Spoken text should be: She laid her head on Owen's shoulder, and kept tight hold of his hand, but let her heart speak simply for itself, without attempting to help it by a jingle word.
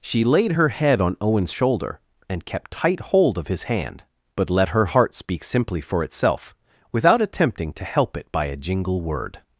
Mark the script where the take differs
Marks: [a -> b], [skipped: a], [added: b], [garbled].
She laid her head on Owen's shoulder, and kept tight hold of his hand, but let her heart speak simply for itself, without attempting to help it by a jingle word.